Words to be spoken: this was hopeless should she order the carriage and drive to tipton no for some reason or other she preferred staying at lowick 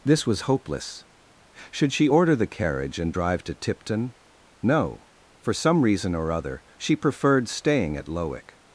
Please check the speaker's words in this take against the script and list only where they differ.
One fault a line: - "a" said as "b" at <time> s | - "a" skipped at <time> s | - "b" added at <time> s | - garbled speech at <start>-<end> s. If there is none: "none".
none